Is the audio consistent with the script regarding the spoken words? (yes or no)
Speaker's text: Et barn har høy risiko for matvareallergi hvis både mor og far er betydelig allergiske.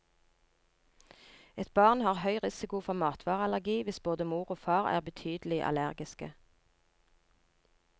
yes